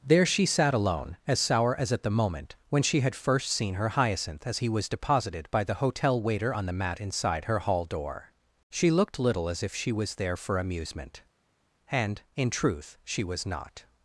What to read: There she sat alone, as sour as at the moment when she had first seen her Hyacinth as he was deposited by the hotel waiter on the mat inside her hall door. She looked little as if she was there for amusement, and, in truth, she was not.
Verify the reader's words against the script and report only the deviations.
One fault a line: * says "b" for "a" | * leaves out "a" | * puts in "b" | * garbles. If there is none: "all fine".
all fine